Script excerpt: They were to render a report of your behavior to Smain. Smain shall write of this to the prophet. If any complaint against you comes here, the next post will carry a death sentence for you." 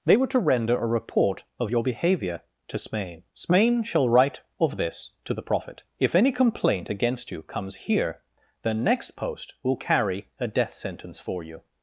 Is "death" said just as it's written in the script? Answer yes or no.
yes